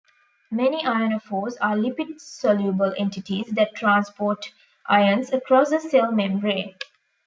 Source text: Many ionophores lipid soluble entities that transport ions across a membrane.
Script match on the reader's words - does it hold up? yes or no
no